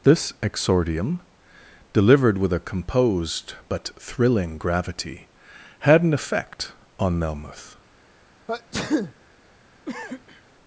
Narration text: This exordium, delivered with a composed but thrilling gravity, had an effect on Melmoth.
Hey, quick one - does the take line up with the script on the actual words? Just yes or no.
yes